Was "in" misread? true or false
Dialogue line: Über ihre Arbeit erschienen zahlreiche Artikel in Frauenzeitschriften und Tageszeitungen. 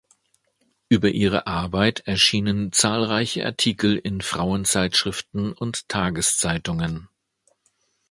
false